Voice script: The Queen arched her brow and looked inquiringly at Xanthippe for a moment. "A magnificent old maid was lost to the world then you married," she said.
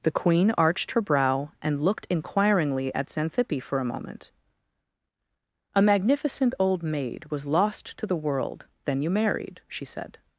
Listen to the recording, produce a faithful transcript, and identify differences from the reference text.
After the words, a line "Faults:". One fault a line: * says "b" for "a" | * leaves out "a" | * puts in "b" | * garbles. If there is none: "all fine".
The Queen arched her brow and looked inquiringly at Xanthippe for a moment. "A magnificent old maid was lost to the world then you married," she said.
Faults:
all fine